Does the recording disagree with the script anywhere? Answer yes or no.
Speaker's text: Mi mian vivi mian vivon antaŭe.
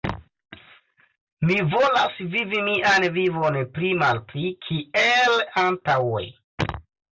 yes